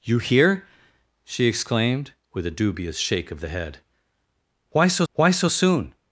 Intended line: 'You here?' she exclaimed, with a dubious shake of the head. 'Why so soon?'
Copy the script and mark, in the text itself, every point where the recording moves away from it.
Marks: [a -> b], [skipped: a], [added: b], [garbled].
'You here?' she exclaimed, with a dubious shake of the head. 'Why so [added: why so] soon?'